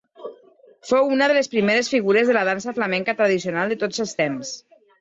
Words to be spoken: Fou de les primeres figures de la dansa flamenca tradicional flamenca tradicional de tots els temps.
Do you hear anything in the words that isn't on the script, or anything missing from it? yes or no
yes